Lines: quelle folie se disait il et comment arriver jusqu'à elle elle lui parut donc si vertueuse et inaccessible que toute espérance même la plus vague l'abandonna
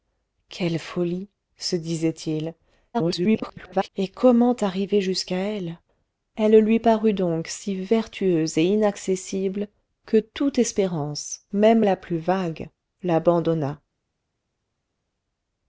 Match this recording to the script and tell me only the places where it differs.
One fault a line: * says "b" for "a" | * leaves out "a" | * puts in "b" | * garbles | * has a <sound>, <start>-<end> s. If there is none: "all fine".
* garbles